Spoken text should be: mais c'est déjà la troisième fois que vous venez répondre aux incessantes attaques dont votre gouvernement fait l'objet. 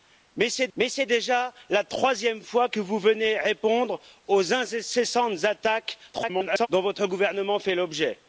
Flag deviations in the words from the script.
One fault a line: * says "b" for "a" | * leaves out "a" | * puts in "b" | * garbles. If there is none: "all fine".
* puts in "mais c'est"
* garbles